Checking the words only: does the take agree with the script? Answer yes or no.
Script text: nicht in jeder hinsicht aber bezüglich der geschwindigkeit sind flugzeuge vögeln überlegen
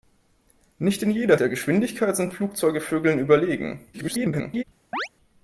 no